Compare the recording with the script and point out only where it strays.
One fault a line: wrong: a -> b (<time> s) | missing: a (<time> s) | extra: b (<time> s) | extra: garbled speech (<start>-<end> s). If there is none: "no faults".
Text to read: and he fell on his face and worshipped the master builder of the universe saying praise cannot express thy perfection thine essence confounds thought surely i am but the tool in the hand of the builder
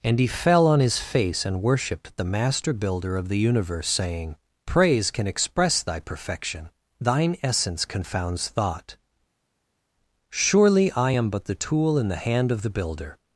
wrong: cannot -> can (5.1 s)